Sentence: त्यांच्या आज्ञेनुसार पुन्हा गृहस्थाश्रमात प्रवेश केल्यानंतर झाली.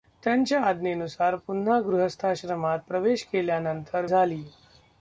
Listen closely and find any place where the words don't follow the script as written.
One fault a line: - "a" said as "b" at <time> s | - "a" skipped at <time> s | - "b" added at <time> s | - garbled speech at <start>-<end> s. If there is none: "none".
none